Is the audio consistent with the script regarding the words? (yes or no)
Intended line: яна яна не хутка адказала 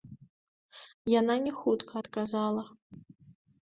no